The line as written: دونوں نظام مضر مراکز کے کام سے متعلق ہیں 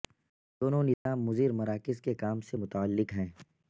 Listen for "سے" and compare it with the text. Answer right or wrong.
right